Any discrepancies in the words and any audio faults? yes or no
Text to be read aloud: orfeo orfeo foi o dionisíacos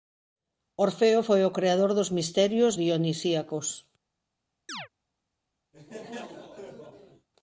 yes